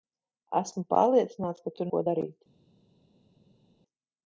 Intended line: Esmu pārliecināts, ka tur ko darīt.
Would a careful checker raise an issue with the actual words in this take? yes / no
no